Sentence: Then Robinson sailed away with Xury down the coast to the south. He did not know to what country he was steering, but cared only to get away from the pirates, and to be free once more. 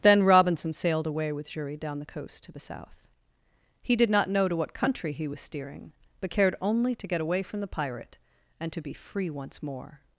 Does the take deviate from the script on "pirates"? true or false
true